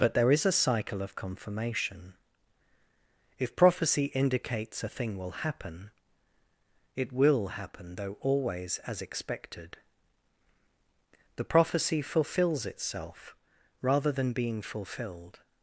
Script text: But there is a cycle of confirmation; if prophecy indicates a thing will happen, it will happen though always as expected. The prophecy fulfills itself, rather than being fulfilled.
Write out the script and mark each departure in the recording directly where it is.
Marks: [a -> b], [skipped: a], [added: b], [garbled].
But there is a cycle of confirmation; if prophecy indicates a thing will happen, it will happen though always as expected. The prophecy fulfills itself, rather than being fulfilled.